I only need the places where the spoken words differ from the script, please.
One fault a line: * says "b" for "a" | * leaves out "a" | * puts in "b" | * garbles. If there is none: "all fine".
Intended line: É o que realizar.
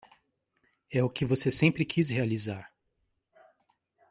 * puts in "você sempre quis"